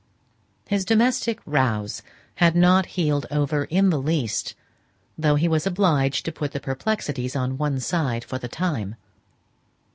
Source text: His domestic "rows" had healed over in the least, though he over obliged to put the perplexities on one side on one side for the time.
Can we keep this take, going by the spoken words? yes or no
no